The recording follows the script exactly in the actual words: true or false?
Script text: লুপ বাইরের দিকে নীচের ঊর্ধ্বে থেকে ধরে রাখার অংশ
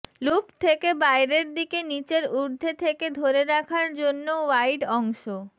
false